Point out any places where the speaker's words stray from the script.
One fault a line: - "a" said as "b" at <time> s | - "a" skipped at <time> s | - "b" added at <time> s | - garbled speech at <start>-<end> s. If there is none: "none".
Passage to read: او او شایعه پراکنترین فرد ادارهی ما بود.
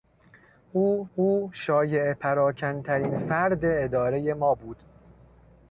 none